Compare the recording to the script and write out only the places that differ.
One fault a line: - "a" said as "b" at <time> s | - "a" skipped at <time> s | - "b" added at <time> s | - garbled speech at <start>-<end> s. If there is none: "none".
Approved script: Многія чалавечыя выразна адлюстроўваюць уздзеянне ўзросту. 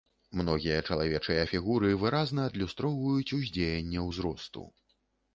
- "фігуры" added at 1.5 s